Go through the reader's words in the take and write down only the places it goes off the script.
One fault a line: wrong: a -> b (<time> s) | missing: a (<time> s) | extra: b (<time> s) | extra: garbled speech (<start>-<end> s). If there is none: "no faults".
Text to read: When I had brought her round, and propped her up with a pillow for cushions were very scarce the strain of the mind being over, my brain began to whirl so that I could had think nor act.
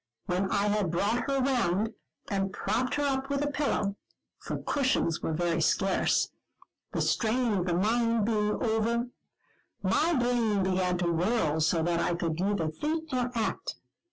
wrong: had -> neither (12.4 s)